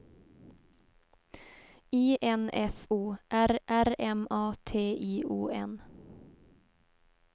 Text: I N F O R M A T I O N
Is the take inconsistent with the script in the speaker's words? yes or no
yes